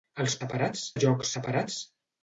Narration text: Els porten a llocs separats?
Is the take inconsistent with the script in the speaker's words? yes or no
yes